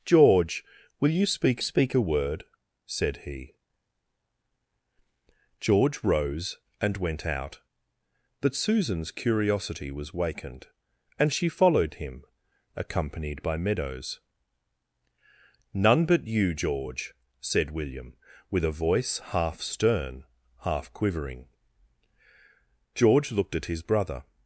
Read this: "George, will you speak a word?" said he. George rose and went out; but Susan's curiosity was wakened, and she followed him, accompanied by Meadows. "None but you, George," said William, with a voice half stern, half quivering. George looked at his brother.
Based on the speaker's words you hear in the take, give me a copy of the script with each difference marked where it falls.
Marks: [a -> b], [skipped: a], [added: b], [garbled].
"George, will you speak [added: speak] a word?" said he. George rose and went out; but Susan's curiosity was wakened, and she followed him, accompanied by Meadows. "None but you, George," said William, with a voice half stern, half quivering. George looked at his brother.